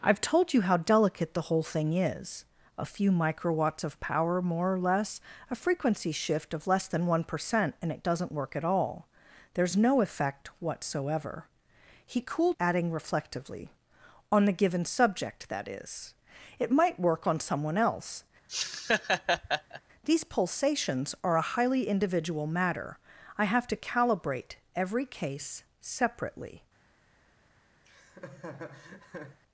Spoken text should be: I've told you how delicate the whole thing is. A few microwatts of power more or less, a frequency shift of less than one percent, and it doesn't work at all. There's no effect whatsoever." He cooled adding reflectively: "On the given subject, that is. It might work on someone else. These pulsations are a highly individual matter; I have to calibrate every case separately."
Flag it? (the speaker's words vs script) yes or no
no